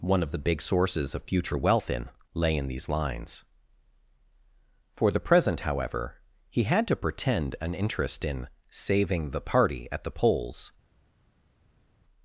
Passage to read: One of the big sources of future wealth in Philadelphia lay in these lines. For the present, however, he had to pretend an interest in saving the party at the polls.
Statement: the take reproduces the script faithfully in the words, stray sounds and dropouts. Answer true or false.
false